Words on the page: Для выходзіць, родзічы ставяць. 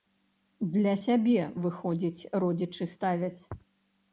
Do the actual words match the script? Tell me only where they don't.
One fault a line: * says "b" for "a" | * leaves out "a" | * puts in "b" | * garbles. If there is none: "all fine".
* puts in "сябе"